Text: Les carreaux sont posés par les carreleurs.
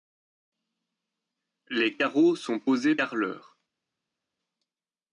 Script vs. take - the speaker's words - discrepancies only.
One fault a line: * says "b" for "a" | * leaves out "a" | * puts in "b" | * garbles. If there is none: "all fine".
* leaves out "par les"